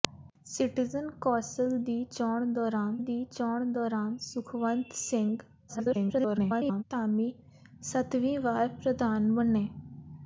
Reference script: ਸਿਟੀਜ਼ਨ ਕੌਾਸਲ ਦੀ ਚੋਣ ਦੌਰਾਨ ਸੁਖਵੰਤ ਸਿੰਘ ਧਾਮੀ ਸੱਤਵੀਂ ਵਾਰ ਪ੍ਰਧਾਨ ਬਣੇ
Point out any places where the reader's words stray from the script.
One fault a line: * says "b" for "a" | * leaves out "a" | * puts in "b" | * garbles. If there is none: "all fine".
* puts in "ਦੀ ਚੋਣ ਦੌਰਾਨ"
* garbles